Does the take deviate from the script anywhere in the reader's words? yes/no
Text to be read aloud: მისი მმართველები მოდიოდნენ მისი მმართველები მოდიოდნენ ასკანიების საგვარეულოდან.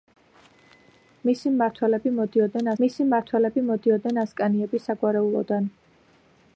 no